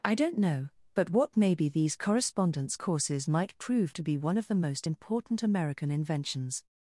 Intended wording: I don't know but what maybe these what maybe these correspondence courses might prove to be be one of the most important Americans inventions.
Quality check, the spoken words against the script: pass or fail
fail